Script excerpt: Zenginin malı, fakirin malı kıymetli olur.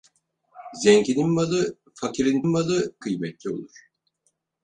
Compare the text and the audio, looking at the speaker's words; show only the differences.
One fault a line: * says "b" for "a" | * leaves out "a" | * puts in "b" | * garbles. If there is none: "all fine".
all fine